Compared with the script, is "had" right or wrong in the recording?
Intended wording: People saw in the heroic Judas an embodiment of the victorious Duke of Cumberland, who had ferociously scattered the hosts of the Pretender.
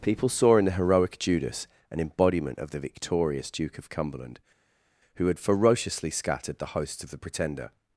right